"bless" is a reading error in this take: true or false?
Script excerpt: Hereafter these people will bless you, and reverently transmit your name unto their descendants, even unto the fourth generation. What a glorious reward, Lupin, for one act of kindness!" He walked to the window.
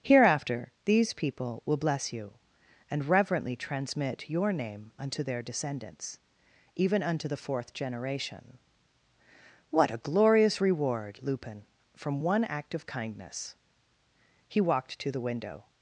false